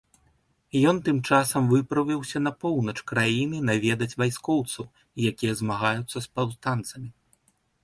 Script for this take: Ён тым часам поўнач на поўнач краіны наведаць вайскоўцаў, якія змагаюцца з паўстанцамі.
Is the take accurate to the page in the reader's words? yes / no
no